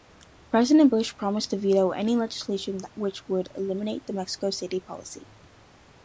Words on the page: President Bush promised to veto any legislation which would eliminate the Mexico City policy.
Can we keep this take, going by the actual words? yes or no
yes